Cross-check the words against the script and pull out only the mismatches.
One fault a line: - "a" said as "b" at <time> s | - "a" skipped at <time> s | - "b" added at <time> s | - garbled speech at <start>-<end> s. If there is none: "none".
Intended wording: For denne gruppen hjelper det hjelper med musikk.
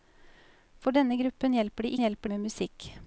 none